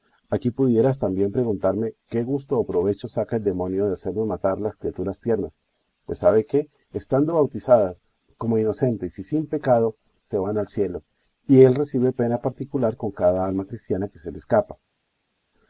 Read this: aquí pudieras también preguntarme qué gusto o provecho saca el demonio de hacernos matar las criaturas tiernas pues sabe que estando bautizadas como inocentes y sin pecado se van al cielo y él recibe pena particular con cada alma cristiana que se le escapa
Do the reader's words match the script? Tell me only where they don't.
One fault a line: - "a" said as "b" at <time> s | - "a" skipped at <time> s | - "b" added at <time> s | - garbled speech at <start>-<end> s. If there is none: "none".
none